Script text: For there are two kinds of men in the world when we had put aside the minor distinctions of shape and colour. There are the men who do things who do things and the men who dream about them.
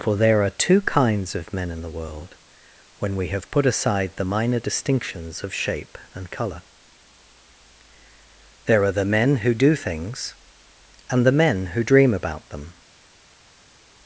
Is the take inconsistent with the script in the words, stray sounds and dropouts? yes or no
yes